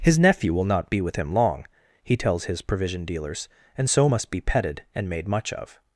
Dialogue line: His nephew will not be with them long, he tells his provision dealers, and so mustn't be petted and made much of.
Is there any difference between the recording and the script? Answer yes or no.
yes